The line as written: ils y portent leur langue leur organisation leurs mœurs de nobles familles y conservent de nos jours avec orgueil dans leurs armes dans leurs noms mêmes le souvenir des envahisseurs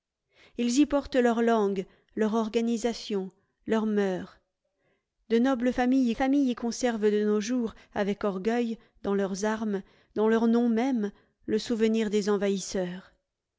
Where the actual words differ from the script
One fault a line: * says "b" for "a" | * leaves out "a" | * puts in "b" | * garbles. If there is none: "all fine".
* puts in "familles"